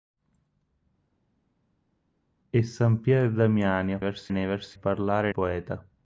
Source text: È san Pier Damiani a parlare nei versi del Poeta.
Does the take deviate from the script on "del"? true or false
true